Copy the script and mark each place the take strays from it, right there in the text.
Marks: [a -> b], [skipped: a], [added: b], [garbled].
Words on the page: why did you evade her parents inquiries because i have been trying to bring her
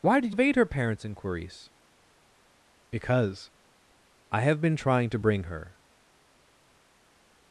why did [skipped: you] evade her parents inquiries because i have been trying to bring her